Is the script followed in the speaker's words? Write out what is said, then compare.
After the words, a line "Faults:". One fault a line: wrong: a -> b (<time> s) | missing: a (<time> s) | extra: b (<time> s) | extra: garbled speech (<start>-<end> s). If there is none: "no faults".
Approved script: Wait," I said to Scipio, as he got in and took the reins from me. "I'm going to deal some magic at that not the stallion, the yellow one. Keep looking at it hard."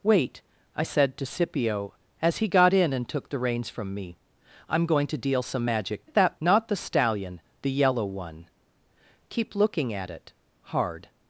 Wait," I said to Scipio, as he got in and took the reins from me. "I'm going to deal some magic at that not the stallion, the yellow one. Keep looking at it hard."
Faults:
no faults